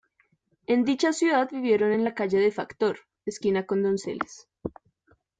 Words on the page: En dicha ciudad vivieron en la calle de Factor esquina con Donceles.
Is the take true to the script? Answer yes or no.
yes